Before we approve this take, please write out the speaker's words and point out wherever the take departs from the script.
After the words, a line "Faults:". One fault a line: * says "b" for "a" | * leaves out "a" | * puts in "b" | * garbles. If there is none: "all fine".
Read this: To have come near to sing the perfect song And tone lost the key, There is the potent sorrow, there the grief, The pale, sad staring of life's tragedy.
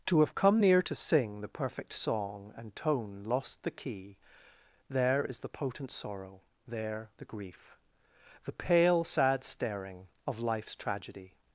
To have come near to sing the perfect song And tone lost the key, There is the potent sorrow, there the grief, The pale, sad staring of life's tragedy.
Faults:
all fine